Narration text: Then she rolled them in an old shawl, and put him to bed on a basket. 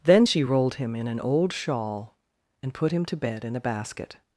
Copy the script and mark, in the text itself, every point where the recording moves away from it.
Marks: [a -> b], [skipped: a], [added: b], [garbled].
Then she rolled [them -> him] in an old shawl, and put him to bed [on -> in] a basket.